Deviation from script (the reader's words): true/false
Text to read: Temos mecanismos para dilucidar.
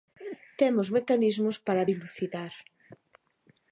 false